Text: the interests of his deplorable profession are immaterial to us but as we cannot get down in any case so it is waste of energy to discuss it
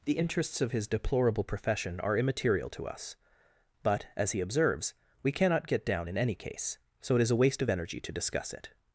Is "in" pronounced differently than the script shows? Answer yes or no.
no